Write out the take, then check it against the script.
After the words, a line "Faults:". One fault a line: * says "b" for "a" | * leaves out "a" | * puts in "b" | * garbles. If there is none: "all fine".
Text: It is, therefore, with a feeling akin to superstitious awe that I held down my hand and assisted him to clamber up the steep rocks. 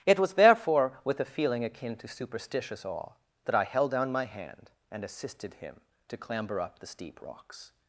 It was, therefore, with a feeling akin to superstitious awe that I held down my hand and assisted him to clamber up the steep rocks.
Faults:
* says "was" for "is"